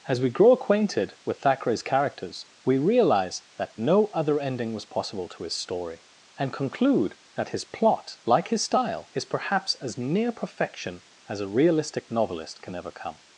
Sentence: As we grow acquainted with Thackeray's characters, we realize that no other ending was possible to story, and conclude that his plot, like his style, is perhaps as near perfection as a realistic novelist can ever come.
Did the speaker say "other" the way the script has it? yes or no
yes